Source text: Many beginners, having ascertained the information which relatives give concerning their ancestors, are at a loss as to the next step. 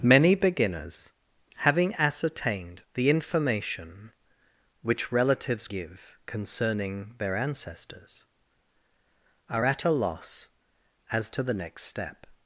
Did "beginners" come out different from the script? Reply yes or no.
no